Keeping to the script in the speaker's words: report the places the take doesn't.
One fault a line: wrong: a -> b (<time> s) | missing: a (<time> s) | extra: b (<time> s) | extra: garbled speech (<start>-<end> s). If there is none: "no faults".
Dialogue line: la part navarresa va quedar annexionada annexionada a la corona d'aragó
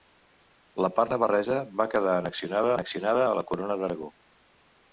no faults